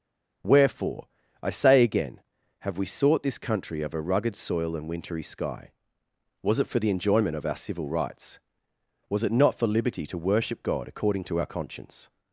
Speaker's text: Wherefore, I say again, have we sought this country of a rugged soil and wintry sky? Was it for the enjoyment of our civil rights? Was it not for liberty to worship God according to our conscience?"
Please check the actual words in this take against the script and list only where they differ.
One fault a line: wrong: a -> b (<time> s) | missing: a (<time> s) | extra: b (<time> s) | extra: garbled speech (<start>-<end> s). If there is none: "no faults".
no faults